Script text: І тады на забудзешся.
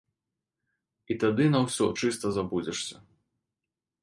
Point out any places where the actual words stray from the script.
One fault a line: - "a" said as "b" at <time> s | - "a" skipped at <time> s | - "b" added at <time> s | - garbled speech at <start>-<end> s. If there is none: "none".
- "ўсё чыста" added at 1.7 s